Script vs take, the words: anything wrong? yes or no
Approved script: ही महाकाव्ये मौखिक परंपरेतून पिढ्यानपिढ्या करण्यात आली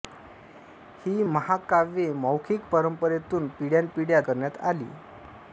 no